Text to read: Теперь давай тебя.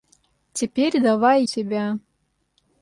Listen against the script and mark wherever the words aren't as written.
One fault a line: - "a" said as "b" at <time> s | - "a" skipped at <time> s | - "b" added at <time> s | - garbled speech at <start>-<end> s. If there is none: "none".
none